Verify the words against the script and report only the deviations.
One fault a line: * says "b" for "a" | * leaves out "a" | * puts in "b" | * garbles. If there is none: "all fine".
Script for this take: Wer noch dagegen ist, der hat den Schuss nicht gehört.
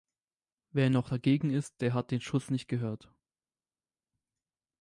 all fine